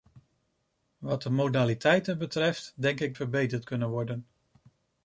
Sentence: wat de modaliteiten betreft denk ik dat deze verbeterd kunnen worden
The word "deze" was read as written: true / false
false